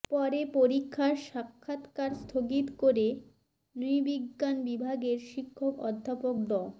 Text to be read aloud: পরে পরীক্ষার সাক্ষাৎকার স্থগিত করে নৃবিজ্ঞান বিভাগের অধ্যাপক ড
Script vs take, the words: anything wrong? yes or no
yes